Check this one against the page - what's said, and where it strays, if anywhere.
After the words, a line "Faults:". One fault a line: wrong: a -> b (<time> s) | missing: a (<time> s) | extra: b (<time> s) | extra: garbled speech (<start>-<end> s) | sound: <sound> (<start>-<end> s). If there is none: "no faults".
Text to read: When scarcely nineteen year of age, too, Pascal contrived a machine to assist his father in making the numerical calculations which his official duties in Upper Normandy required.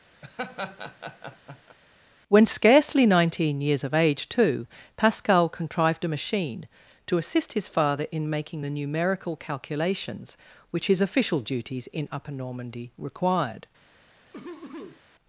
When scarcely nineteen years of age, too, Pascal contrived a machine to assist his father in making the numerical calculations which his official duties in Upper Normandy required.
Faults:
sound: laugh (0.2-1.8 s)
wrong: year -> years (3.6 s)
sound: cough (14.3-15.0 s)